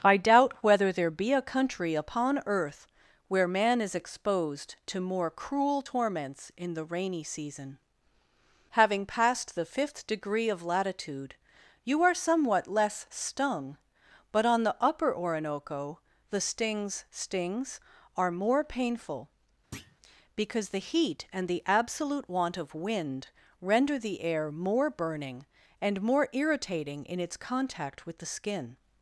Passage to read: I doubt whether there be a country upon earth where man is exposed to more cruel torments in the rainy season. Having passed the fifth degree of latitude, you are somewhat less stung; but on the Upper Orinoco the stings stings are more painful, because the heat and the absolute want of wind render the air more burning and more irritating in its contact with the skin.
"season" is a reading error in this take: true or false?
false